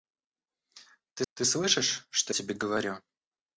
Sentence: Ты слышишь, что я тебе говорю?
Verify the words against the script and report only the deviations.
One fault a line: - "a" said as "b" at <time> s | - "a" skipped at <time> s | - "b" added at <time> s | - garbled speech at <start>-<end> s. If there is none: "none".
- "ты" added at 1.3 s
- "я" skipped at 2.3 s